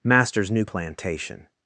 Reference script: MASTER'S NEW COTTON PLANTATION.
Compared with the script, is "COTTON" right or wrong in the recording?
wrong